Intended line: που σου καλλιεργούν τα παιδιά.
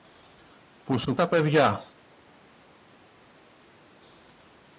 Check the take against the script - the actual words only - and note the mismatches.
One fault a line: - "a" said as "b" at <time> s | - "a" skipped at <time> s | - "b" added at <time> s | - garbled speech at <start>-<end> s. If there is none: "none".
- "καλλιεργούν" skipped at 1.1 s